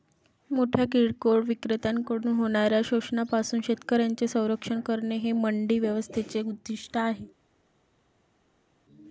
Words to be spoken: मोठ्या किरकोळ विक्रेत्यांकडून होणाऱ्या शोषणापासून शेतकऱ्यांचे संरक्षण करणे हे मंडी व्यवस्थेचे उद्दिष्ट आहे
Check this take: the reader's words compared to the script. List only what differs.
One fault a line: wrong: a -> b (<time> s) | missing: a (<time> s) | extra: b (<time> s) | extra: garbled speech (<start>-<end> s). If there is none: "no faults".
no faults